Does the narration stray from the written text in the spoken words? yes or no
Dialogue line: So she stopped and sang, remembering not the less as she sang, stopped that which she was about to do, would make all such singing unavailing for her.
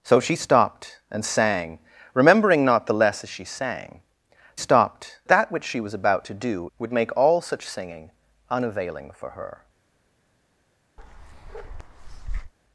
no